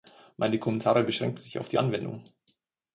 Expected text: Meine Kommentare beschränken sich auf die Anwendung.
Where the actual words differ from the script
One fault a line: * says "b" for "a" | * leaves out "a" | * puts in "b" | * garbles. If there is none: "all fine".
all fine